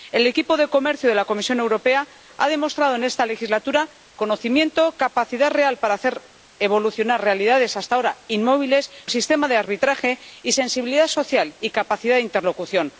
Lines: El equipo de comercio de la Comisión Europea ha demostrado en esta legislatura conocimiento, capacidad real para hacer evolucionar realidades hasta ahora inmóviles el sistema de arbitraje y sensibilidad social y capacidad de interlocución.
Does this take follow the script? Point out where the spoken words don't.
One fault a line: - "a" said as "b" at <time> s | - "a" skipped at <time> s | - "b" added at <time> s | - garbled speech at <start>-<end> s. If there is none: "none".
none